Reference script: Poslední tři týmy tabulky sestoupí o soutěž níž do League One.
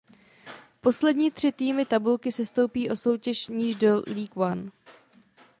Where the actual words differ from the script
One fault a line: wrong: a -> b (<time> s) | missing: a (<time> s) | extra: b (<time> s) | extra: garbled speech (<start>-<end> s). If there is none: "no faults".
no faults